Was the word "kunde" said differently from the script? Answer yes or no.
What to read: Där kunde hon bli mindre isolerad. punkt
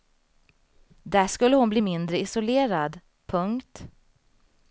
yes